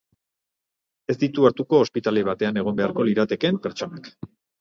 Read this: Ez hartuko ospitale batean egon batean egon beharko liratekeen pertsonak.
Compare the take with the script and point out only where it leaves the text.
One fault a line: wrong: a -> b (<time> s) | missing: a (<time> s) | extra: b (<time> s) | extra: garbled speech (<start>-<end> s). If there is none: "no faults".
extra: ditu (1.2 s)
missing: batean egon (2.8 s)